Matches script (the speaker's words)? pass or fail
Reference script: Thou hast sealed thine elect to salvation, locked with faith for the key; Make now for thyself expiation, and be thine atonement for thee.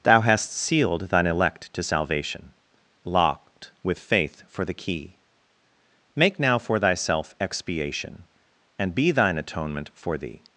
pass